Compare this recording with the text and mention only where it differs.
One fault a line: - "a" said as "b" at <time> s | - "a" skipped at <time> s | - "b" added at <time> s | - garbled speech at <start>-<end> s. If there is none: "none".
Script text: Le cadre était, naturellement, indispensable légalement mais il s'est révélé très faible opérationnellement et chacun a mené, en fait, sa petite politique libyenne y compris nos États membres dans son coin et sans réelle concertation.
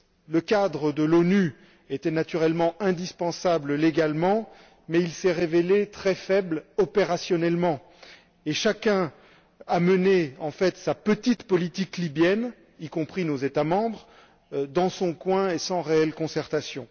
- "de l'ONU" added at 0.9 s